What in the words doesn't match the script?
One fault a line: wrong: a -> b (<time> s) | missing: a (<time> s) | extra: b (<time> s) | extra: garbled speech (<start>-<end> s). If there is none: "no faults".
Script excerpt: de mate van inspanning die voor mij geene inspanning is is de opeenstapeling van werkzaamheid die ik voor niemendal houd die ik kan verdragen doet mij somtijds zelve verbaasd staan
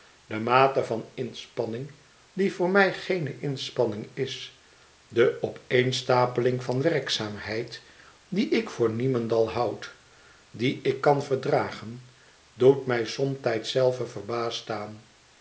missing: is (4.6 s)